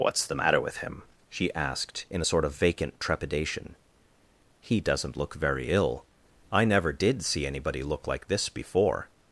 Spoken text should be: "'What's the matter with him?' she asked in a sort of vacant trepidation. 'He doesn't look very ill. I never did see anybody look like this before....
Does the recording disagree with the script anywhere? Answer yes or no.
no